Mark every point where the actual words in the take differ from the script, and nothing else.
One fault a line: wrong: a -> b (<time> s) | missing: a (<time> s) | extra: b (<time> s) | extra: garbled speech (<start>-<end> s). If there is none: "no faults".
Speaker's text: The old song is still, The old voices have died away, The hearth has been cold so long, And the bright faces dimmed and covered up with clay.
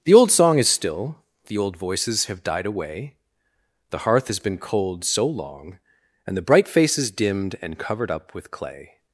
no faults